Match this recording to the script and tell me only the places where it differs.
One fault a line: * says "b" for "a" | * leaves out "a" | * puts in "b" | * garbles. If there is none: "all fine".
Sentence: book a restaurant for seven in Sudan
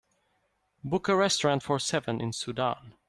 all fine